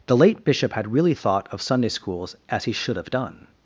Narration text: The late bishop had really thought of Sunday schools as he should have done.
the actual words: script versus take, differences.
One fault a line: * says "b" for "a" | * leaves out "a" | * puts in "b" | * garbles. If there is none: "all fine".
all fine